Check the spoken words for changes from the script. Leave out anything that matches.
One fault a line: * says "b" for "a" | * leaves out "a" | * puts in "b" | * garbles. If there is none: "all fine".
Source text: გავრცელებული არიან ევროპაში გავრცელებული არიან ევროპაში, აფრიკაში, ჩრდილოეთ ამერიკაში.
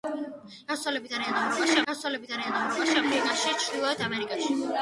all fine